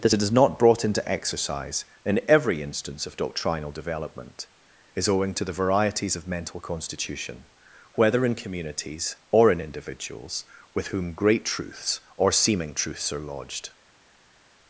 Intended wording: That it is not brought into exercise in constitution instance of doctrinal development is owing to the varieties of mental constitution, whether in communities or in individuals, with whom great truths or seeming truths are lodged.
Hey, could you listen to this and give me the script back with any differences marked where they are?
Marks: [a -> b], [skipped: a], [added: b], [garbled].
That it is not brought into exercise in [constitution -> every] instance of doctrinal development is owing to the varieties of mental constitution, whether in communities or in individuals, with whom great truths or seeming truths are lodged.